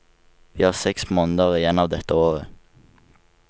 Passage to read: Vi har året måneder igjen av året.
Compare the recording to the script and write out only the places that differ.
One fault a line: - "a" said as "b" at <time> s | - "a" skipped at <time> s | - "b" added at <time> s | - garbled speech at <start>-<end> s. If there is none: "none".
- "året" said as "seks" at 0.7 s
- "dette" added at 1.9 s